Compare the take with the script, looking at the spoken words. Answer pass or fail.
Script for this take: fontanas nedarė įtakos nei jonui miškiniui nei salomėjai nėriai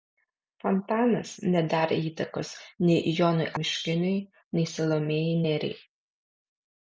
pass